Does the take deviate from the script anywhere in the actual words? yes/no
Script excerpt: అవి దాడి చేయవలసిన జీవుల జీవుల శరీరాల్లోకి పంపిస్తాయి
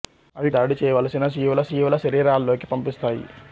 no